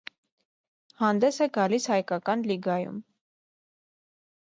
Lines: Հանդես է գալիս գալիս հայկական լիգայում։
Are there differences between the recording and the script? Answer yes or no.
yes